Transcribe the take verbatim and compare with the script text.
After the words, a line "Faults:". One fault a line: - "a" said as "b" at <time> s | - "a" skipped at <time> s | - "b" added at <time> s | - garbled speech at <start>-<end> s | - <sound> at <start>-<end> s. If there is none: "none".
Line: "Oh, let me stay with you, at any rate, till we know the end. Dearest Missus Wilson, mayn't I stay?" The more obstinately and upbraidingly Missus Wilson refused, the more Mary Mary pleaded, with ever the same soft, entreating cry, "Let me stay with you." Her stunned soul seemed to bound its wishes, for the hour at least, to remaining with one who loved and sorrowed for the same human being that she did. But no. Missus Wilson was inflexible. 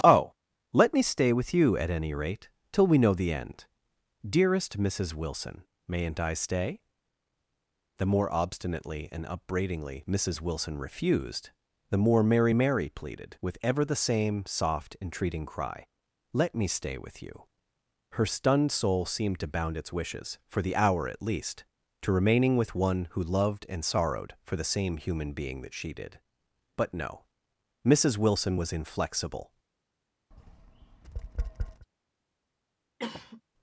"Oh, let me stay with you, at any rate, till we know the end. Dearest Missus Wilson, mayn't I stay?" The more obstinately and upbraidingly Missus Wilson refused, the more Mary Mary pleaded, with ever the same soft, entreating cry, "Let me stay with you." Her stunned soul seemed to bound its wishes, for the hour at least, to remaining with one who loved and sorrowed for the same human being that she did. But no. Missus Wilson was inflexible.
Faults:
- tap at 30.3-31.9 s
- cough at 33.0-33.4 s